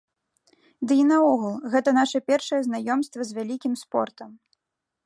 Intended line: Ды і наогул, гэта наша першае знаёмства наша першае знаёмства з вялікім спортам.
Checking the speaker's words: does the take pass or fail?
fail